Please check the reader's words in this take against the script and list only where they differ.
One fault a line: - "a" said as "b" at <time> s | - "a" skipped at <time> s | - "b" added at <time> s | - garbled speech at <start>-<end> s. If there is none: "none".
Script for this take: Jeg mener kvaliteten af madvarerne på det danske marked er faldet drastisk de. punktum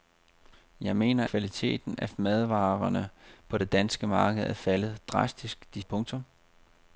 none